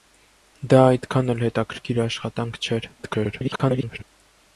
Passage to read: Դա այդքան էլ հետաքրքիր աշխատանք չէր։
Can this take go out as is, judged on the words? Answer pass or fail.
fail